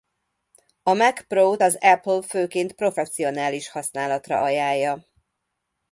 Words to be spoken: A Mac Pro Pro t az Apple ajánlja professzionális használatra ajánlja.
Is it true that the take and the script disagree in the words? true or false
true